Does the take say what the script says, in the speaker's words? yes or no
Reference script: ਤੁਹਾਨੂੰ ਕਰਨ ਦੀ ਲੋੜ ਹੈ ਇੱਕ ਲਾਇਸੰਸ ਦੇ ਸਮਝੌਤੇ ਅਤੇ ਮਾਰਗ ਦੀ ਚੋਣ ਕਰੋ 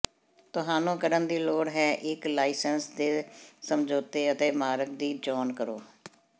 yes